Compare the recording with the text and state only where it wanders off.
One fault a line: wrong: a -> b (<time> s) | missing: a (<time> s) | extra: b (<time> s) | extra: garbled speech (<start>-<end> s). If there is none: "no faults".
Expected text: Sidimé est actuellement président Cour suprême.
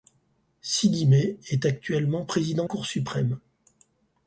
no faults